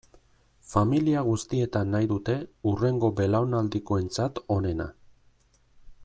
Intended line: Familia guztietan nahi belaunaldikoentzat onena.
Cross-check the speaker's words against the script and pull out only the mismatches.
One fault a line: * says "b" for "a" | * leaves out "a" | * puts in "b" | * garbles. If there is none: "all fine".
* puts in "dute hurrengo"